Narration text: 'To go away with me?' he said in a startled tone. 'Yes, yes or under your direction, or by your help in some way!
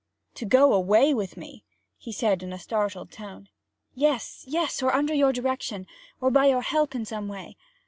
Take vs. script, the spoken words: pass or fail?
pass